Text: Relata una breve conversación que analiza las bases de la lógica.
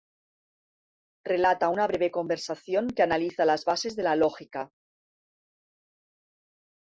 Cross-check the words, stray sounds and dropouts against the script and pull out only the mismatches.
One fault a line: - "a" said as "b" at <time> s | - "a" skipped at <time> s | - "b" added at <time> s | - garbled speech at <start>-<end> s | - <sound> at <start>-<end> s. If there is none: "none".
none